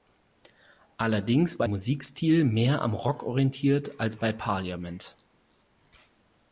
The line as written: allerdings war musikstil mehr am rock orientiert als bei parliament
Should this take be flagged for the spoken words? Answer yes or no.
no